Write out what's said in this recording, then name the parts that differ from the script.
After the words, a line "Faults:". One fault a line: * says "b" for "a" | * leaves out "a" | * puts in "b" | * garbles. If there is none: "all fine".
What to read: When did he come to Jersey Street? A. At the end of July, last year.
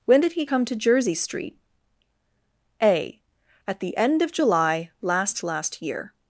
When did he come to Jersey Street? A. At the end of July, last last year.
Faults:
* puts in "last"